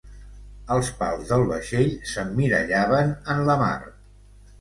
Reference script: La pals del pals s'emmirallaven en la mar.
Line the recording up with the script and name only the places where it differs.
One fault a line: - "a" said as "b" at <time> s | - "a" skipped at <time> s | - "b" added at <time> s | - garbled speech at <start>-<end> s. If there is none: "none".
- "La" said as "Els" at 0.8 s
- "pals" said as "vaixell" at 1.5 s